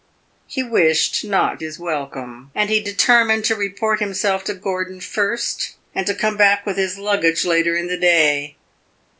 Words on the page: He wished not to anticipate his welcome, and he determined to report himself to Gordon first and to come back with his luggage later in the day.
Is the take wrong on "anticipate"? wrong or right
wrong